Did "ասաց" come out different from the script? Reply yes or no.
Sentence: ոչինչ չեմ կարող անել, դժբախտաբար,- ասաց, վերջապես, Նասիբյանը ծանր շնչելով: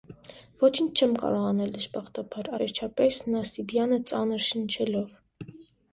yes